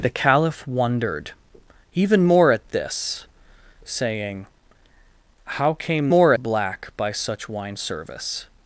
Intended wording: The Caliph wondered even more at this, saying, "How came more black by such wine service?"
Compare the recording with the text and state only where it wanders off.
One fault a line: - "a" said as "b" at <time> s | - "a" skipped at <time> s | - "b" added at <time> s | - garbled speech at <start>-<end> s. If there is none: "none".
none